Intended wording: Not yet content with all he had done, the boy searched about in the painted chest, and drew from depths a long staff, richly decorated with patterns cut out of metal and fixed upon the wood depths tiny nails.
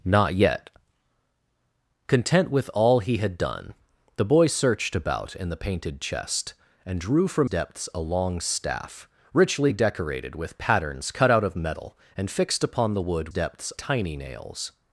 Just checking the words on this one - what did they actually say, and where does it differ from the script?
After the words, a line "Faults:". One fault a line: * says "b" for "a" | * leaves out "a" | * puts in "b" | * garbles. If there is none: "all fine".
Not yet content with all he had done, the boy searched about in the painted chest, and drew from depths a long staff, richly decorated with patterns cut out of metal and fixed upon the wood depths tiny nails.
Faults:
all fine